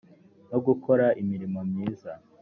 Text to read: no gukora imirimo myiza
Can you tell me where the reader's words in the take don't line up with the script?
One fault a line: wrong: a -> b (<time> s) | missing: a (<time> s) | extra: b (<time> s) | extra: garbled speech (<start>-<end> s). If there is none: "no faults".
no faults